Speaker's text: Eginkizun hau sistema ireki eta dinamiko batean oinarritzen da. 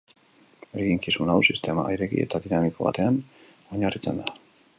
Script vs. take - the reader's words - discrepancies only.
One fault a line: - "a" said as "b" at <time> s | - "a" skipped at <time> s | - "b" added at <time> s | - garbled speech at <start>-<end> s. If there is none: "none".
none